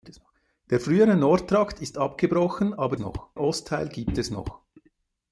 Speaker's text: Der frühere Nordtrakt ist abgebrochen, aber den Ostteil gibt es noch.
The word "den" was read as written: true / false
false